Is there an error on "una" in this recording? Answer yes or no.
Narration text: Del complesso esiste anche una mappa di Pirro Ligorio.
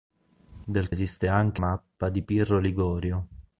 yes